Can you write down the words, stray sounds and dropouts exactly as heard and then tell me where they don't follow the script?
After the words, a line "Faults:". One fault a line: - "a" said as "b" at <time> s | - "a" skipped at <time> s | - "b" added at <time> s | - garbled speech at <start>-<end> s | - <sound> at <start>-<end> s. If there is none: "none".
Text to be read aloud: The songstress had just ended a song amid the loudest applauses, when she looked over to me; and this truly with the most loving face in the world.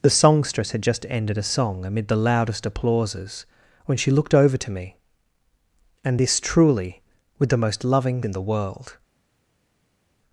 The songstress had just ended a song amid the loudest applauses, when she looked over to me; and this truly with the most loving in the world.
Faults:
- "face" skipped at 8.2 s